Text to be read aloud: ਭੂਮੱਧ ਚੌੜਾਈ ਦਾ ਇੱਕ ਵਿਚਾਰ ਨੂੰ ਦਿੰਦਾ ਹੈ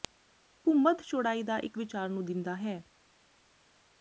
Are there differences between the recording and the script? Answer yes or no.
no